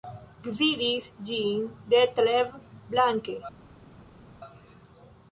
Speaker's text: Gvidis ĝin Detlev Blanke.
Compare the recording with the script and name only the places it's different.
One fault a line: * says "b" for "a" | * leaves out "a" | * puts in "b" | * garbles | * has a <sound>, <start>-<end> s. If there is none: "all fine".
all fine